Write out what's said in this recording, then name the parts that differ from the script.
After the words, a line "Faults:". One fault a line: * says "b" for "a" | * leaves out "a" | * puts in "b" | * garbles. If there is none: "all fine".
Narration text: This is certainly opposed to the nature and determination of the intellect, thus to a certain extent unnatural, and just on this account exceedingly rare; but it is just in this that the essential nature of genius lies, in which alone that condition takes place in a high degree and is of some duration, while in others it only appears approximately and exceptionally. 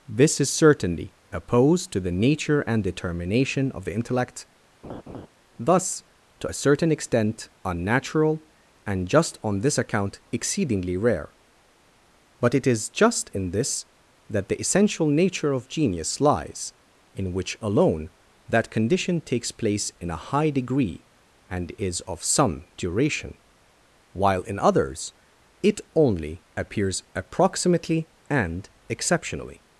This is certainly opposed to the nature and determination of the intellect, thus to a certain extent unnatural, and just on this account exceedingly rare; but it is just in this that the essential nature of genius lies, in which alone that condition takes place in a high degree and is of some duration, while in others it only appears approximately and exceptionally.
Faults:
all fine